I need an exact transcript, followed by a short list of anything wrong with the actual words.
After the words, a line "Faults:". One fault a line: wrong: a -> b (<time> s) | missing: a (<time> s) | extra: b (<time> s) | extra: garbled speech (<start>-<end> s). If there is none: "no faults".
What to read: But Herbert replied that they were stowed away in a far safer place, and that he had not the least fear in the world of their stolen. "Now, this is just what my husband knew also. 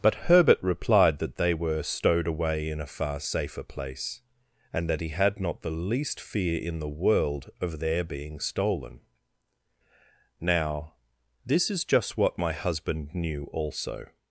But Herbert replied that they were stowed away in a far safer place, and that he had not the least fear in the world of their being stolen. "Now, this is just what my husband knew also.
Faults:
extra: being (8.0 s)